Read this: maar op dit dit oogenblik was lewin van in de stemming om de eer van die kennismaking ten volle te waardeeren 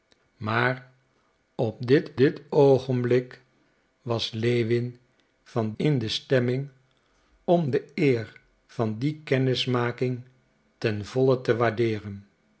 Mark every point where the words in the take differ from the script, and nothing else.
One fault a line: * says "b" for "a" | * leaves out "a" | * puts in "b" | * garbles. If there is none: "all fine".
all fine